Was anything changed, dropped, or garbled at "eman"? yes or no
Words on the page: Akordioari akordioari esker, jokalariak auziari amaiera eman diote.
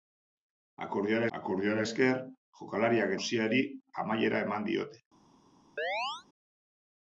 no